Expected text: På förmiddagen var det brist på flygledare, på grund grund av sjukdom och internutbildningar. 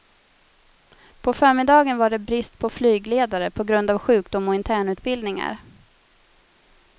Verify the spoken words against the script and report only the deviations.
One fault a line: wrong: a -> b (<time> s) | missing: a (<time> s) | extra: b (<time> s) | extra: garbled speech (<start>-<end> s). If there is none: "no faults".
missing: grund (3.9 s)